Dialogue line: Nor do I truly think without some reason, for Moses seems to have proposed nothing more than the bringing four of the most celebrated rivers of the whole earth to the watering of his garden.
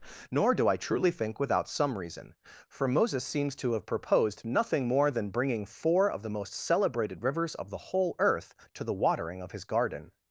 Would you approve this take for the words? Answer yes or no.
no